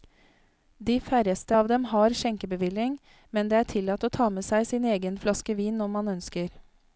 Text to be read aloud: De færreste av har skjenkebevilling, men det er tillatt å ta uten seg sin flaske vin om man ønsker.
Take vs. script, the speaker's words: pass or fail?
fail